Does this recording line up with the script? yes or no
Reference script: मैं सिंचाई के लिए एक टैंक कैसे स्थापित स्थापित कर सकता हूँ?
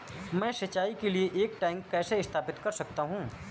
no